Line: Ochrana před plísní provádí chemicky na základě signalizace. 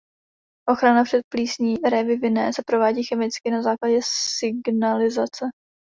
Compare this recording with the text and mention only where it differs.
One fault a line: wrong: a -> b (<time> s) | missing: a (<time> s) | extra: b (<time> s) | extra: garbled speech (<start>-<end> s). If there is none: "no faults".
extra: révy vinné se (1.9 s)